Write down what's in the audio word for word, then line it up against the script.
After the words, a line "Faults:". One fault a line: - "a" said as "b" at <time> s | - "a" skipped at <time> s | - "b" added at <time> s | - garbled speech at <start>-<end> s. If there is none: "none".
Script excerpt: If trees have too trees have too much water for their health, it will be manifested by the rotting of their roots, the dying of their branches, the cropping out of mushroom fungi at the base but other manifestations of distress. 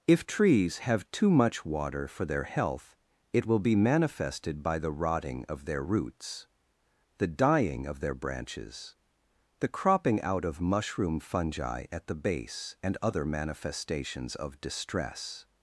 If trees have too much water for their health, it will be manifested by the rotting of their roots, the dying of their branches, the cropping out of mushroom fungi at the base and other manifestations of distress.
Faults:
- "trees have too" skipped at 1.3 s
- "but" said as "and" at 12.8 s